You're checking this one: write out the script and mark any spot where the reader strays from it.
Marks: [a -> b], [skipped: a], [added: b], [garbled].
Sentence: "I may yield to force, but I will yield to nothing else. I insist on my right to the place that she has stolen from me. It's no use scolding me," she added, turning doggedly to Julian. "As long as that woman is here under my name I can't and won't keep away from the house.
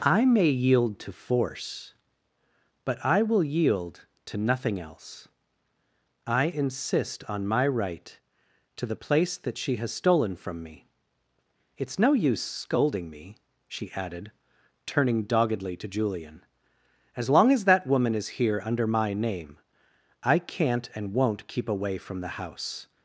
"I may yield to force, but I will yield to nothing else. I insist on my right to the place that she has stolen from me. It's no use scolding me," she added, turning doggedly to Julian. "As long as that woman is here under my name I can't and won't keep away from the house.